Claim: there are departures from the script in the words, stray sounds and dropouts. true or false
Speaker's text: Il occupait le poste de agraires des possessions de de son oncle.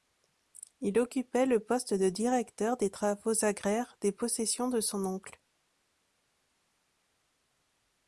true